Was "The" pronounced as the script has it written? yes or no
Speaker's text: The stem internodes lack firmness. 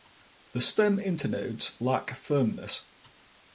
yes